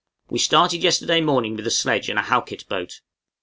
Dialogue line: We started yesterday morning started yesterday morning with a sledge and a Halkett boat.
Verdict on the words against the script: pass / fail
fail